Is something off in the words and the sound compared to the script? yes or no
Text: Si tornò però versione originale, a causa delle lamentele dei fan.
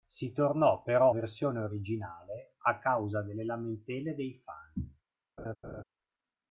yes